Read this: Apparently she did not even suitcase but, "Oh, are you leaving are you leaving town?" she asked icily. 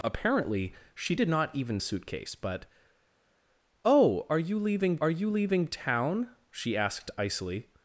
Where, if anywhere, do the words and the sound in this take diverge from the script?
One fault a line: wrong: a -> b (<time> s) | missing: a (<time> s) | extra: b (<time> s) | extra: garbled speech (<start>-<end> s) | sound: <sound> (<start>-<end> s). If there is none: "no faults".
no faults